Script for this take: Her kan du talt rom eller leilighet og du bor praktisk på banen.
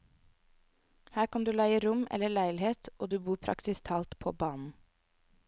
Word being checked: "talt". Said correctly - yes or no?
no